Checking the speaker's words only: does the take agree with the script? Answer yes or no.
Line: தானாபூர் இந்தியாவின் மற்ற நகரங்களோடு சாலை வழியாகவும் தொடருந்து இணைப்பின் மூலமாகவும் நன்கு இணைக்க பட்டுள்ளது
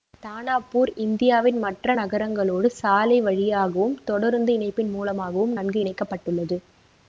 yes